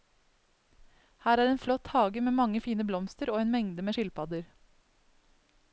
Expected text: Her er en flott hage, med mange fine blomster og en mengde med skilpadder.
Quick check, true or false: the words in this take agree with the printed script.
true